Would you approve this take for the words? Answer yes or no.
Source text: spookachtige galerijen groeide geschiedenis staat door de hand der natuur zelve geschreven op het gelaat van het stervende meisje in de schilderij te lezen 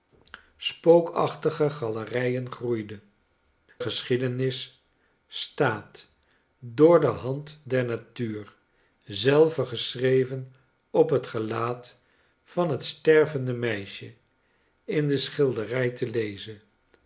yes